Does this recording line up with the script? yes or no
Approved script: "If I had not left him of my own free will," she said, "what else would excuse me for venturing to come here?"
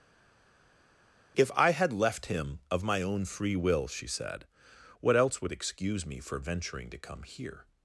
no